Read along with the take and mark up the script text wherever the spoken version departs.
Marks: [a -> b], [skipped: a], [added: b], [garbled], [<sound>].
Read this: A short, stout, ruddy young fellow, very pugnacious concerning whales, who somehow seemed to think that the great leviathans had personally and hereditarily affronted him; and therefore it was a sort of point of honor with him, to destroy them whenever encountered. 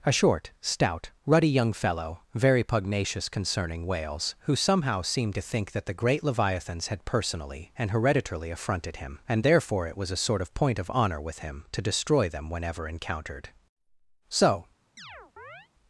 A short, stout, ruddy young fellow, very pugnacious concerning whales, who somehow seemed to think that the great leviathans had personally and hereditarily affronted him; and therefore it was a sort of point of honor with him, to destroy them whenever encountered. [added: So] [chirp]